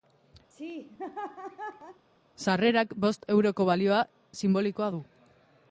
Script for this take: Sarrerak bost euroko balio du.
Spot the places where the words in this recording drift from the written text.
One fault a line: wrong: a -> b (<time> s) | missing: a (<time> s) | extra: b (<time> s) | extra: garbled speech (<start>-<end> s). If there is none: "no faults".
extra: sinbolikoa (4.4 s)